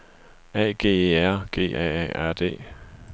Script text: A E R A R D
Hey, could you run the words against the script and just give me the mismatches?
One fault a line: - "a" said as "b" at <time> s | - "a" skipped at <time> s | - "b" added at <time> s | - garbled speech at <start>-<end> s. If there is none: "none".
- "G" added at 0.7 s
- "G A" added at 1.5 s